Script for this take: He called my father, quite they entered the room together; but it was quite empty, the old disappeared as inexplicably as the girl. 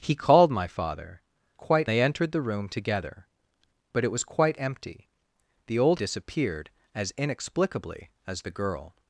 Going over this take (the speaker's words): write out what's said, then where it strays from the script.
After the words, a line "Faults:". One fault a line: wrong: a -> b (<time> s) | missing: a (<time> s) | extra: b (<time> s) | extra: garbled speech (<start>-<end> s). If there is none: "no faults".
He called my father, quite they entered the room together; but it was quite empty, the old disappeared as inexplicably as the girl.
Faults:
no faults